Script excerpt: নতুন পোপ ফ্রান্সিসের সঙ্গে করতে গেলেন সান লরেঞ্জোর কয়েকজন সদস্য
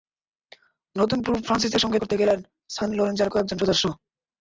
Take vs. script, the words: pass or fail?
pass